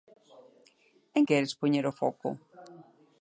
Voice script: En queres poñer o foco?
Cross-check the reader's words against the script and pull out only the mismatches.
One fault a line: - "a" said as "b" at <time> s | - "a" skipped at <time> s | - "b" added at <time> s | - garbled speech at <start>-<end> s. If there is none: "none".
none